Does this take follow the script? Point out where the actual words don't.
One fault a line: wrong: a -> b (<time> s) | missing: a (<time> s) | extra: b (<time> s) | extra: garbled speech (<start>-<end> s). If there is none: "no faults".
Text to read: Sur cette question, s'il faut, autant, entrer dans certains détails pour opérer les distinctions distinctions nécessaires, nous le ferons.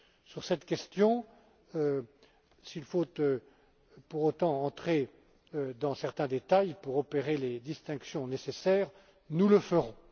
extra: pour (4.1 s)
missing: distinctions (8.3 s)